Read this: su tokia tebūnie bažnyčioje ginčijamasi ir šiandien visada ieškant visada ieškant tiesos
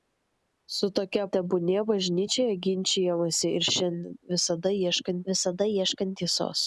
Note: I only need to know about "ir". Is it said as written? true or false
true